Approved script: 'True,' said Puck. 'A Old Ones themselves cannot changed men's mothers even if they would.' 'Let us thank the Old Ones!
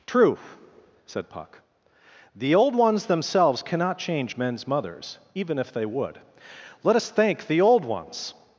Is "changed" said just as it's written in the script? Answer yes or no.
no